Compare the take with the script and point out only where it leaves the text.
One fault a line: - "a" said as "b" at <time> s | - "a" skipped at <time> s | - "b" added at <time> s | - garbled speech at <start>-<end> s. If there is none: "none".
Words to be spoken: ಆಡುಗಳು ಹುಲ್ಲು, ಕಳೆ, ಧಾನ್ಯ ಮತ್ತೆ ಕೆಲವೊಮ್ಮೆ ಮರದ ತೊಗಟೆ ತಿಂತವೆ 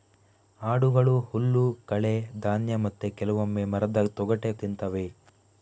none